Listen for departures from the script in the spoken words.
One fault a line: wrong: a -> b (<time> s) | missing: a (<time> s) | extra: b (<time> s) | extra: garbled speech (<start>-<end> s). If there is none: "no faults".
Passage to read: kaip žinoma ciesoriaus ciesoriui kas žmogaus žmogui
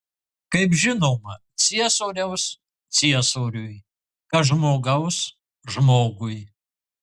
no faults